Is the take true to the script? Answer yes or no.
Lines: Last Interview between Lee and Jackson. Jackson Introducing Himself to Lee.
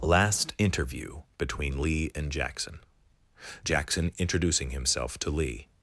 yes